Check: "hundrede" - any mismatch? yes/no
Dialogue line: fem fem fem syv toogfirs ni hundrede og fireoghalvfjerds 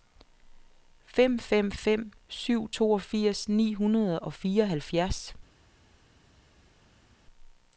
no